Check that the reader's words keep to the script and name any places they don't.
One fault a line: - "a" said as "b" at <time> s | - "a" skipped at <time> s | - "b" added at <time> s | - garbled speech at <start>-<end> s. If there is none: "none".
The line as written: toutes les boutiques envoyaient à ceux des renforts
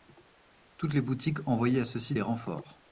- "ci" added at 2.0 s